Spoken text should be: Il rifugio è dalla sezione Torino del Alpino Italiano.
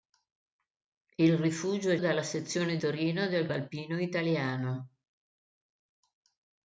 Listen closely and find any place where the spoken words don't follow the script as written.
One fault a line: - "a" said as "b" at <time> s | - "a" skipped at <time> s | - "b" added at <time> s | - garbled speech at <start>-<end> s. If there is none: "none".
none